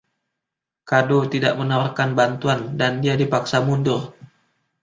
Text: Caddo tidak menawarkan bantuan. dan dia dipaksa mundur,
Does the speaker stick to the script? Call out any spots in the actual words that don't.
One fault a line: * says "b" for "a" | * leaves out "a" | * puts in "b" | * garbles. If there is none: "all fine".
all fine